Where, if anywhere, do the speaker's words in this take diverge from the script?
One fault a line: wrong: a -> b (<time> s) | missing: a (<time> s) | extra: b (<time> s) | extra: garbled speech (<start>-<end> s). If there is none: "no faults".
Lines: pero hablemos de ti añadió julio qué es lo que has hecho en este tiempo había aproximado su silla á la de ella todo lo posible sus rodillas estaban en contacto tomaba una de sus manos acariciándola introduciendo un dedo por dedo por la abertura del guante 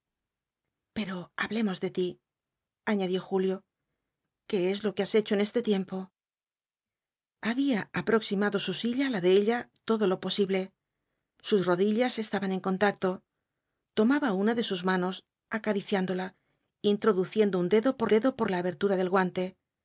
no faults